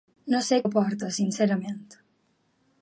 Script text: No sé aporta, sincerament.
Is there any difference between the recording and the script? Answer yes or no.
no